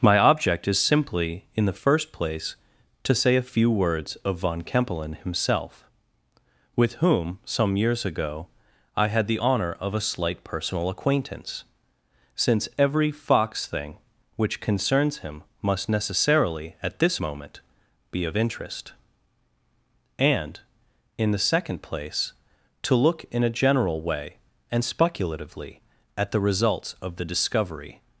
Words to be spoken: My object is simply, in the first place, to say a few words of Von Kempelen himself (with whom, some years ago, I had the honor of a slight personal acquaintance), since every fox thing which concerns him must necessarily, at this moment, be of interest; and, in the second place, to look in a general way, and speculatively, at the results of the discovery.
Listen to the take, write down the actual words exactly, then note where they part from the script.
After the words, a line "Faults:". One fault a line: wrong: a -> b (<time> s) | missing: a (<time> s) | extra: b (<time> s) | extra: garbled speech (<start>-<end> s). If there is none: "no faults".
My object is simply, in the first place, to say a few words of Von Kempelen himself (with whom, some years ago, I had the honor of a slight personal acquaintance), since every fox thing which concerns him must necessarily, at this moment, be of interest; and, in the second place, to look in a general way, and speculatively, at the results of the discovery.
Faults:
no faults